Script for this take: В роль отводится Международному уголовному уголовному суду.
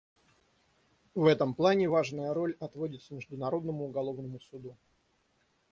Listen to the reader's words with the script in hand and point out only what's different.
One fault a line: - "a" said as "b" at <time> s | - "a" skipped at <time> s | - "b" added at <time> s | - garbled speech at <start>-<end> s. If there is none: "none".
- "этом плане важная" added at 1.2 s
- "уголовному" skipped at 4.4 s